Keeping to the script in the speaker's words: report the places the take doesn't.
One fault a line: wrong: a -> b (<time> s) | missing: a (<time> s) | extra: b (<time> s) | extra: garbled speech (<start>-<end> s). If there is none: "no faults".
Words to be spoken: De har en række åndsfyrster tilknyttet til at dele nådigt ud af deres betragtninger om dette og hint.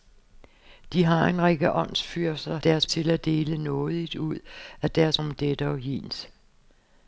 wrong: tilknyttet -> deres (2.6 s)
missing: betragtninger (5.2 s)